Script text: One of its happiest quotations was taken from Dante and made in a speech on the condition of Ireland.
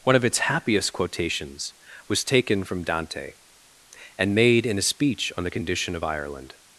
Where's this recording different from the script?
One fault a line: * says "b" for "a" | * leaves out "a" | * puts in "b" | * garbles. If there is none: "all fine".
all fine